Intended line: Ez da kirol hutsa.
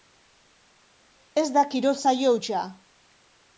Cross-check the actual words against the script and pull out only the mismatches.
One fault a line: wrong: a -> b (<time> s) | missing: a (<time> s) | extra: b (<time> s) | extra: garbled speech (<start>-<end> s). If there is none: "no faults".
extra: saio (2.0 s)